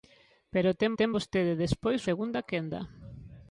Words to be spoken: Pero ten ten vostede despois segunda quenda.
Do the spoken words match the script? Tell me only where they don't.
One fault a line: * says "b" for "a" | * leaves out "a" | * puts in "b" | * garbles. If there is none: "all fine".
all fine